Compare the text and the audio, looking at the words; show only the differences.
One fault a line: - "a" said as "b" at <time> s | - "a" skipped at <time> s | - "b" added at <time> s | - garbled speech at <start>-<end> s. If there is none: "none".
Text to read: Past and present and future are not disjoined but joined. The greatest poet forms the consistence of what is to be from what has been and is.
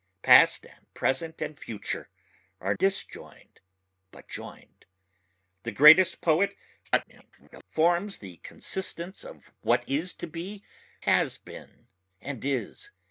- "not" skipped at 2.7 s
- garbled speech at 6.8-7.6 s
- "from what" skipped at 10.6 s